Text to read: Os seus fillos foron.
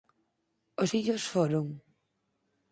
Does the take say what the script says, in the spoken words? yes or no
no